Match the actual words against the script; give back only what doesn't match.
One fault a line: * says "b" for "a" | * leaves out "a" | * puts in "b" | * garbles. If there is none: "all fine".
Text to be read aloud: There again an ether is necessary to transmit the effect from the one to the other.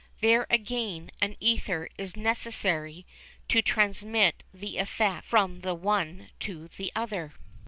all fine